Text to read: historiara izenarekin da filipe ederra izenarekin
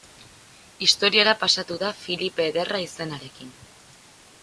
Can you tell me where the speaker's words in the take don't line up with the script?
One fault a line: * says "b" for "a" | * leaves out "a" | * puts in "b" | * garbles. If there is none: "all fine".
* says "pasatu" for "izenarekin"